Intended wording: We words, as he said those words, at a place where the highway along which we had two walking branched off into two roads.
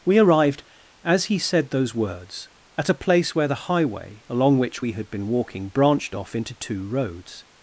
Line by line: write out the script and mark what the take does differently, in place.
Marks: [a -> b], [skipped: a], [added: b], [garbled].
We [words, -> arrived] as he said those words, at a place where the highway along which we had [two -> been] walking branched off into two roads.